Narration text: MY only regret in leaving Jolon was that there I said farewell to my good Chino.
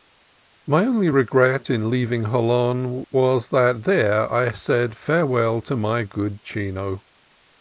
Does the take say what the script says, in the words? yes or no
yes